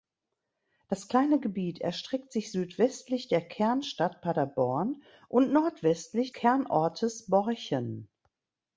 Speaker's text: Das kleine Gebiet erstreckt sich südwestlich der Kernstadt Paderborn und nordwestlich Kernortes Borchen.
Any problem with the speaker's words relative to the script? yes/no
no